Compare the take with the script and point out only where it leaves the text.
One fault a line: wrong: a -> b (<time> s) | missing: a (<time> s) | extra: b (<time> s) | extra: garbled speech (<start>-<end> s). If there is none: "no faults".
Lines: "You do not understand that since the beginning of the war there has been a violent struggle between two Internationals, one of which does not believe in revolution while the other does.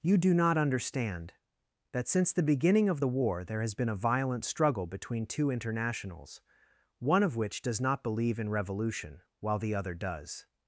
no faults